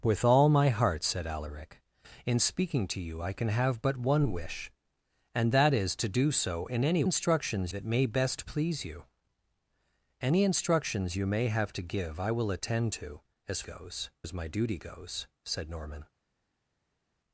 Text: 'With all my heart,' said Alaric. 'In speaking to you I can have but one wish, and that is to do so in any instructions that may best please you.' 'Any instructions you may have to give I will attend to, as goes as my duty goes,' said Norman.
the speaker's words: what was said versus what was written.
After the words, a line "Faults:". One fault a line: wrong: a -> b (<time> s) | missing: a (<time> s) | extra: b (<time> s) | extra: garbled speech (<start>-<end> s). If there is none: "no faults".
'With all my heart,' said Alaric. 'In speaking to you I can have but one wish, and that is to do so in any instructions that may best please you.' 'Any instructions you may have to give I will attend to, as goes as my duty goes,' said Norman.
Faults:
no faults